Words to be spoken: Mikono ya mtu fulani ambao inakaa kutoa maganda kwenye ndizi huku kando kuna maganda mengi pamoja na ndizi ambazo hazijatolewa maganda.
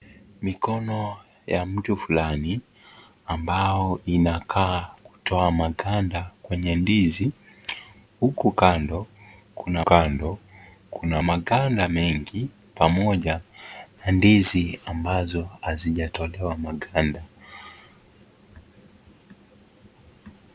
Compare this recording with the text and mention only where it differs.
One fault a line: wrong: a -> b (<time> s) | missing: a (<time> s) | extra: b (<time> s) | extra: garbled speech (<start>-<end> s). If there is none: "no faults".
extra: kando kuna (9.8 s)